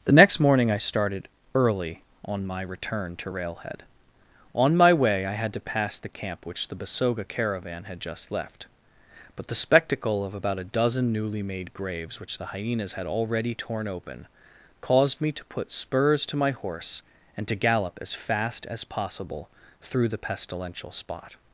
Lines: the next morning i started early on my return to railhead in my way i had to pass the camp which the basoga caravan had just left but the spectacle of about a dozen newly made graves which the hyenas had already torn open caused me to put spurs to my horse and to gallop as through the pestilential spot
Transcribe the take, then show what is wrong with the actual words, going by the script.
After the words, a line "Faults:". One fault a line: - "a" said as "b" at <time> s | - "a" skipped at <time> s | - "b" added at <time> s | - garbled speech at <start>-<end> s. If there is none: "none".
the next morning i started early on my return to railhead on my way i had to pass the camp which the basoga caravan had just left but the spectacle of about a dozen newly made graves which the hyenas had already torn open caused me to put spurs to my horse and to gallop as fast as possible through the pestilential spot
Faults:
- "in" said as "on" at 4.6 s
- "fast as possible" added at 18.1 s